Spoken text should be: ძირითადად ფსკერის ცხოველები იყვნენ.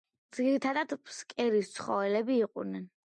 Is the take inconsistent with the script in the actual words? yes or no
no